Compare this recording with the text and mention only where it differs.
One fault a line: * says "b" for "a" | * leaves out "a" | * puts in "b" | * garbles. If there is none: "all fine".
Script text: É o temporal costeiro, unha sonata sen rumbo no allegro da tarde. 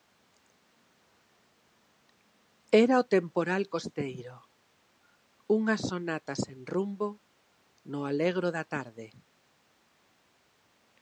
* says "Era" for "É"